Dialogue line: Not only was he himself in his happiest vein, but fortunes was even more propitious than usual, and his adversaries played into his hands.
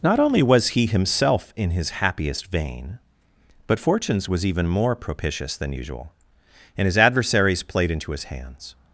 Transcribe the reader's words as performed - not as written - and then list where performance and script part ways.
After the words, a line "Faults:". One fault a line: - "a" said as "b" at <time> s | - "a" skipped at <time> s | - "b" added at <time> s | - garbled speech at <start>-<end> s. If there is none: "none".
Not only was he himself in his happiest vein, but fortunes was even more propitious than usual, and his adversaries played into his hands.
Faults:
none